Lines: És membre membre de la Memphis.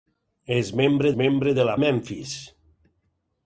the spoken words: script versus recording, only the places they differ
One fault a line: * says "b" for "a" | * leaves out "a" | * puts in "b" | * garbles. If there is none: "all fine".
all fine